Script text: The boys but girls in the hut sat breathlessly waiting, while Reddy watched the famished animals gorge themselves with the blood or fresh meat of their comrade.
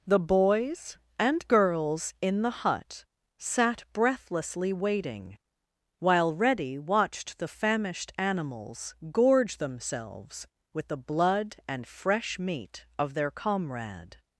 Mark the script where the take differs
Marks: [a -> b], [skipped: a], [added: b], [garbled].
The boys [but -> and] girls in the hut sat breathlessly waiting, while Reddy watched the famished animals gorge themselves with the blood [or -> and] fresh meat of their comrade.